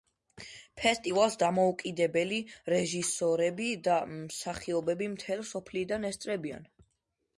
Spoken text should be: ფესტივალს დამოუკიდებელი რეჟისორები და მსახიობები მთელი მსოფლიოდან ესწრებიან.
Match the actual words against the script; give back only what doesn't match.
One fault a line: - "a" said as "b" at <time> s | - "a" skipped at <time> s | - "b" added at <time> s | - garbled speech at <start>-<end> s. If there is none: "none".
none